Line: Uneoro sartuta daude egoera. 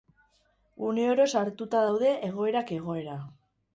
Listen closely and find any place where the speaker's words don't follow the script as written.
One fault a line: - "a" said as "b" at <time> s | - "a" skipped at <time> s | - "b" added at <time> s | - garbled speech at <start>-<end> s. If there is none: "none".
- "egoerak" added at 2.3 s